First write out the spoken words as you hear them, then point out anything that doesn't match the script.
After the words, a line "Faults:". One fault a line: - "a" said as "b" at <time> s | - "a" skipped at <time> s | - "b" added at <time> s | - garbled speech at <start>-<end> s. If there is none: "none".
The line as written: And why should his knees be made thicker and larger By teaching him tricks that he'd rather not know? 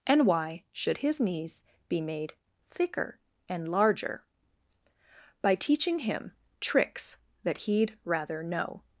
And why should his knees be made thicker and larger By teaching him tricks that he'd rather know?
Faults:
- "not" skipped at 8.4 s